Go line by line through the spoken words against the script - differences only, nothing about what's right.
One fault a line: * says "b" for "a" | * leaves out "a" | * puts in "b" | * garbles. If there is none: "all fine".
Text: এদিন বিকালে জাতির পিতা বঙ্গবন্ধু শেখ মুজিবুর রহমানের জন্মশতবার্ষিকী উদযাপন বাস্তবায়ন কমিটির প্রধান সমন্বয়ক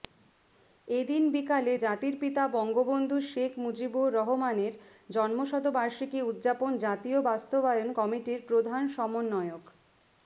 * puts in "জাতীয়"